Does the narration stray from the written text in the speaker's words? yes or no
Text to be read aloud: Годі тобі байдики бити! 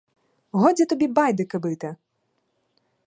no